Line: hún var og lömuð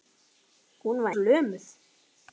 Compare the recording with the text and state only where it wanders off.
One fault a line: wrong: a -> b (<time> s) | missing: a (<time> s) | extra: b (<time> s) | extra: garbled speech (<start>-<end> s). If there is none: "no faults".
no faults